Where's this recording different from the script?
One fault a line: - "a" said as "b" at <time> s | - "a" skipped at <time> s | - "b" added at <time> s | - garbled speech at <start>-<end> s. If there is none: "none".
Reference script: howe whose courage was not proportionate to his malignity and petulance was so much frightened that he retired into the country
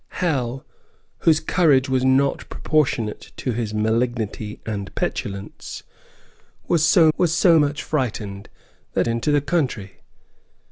- "was so" added at 7.2 s
- "he retired" skipped at 9.1 s